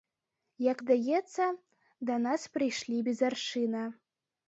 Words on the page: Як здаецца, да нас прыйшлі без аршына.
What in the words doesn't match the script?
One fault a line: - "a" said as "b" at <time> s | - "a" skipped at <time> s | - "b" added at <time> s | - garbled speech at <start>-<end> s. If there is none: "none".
none